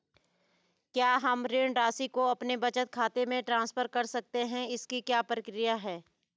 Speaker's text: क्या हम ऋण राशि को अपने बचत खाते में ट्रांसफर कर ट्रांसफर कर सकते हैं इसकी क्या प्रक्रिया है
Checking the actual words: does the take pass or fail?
fail